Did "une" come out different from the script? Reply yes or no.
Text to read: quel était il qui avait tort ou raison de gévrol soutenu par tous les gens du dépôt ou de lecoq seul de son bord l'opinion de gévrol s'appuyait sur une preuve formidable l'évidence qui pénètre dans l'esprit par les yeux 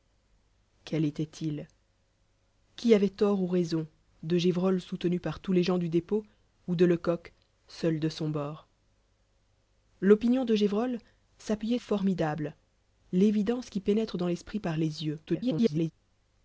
yes